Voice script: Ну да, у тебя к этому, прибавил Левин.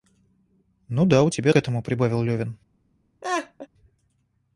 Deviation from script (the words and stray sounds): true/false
true